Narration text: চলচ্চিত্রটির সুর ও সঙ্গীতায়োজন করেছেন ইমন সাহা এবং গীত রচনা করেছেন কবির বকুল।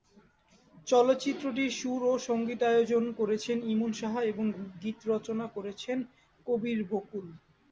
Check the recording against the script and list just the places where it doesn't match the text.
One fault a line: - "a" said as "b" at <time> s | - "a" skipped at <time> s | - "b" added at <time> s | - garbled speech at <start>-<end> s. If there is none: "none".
none